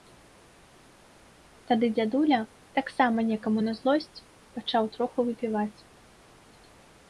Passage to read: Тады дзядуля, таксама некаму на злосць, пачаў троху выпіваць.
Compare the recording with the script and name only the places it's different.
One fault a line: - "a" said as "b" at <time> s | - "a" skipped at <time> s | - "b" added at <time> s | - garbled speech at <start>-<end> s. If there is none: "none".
none